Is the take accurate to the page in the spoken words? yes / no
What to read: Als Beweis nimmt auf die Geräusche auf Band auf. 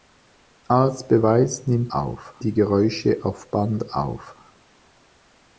yes